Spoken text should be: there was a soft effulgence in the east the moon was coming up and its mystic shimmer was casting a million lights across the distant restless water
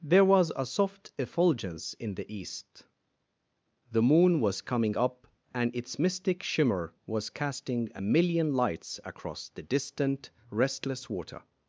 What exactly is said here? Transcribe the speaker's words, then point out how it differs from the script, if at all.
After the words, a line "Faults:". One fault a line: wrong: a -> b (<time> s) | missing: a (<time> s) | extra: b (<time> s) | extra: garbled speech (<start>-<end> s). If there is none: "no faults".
there was a soft effulgence in the east the moon was coming up and its mystic shimmer was casting a million lights across the distant restless water
Faults:
no faults